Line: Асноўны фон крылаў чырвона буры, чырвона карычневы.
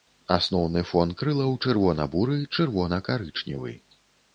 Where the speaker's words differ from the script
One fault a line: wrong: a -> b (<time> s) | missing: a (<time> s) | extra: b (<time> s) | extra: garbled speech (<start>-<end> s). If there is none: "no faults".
no faults